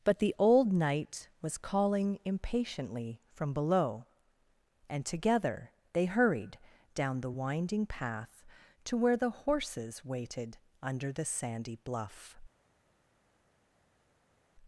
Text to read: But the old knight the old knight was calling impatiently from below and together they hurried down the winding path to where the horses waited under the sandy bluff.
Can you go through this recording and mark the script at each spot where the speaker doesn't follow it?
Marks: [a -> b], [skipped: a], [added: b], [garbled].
But the old knight [skipped: the old knight] was calling impatiently from below and together they hurried down the winding path to where the horses waited under the sandy bluff.